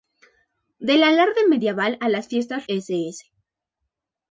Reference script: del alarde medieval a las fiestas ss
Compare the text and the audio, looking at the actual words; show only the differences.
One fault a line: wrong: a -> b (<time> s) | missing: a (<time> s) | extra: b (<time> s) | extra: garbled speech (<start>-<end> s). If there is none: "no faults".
no faults